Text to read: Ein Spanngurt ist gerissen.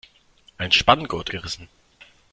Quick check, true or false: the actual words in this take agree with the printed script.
false